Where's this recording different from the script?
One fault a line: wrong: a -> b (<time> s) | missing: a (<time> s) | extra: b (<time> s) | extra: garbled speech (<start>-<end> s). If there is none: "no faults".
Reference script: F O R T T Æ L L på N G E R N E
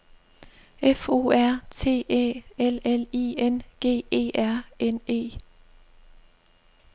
missing: T (2.0 s)
wrong: på -> I (3.1 s)